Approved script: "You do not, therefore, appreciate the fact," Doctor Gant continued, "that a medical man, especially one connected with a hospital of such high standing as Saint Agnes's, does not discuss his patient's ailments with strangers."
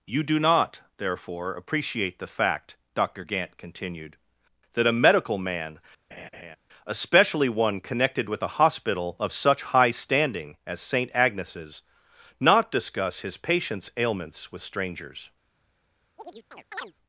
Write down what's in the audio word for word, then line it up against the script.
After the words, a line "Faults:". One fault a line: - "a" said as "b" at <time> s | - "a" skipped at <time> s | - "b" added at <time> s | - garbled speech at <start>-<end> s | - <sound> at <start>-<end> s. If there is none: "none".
"You do not, therefore, appreciate the fact," Doctor Gant continued, "that a medical man, especially one connected with a hospital of such high standing as Saint Agnes's, not discuss his patient's ailments with strangers."
Faults:
- laugh at 6.1-6.6 s
- "does" skipped at 11.8 s
- chirp at 16.2-16.9 s